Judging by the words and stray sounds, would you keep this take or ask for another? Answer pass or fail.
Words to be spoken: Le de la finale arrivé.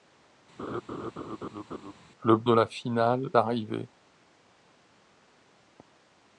fail